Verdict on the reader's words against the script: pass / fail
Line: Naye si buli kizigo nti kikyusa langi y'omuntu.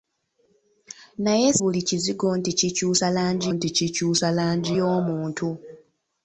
fail